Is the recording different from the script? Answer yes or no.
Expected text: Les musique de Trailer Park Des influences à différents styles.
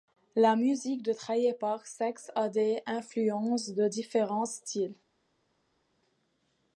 yes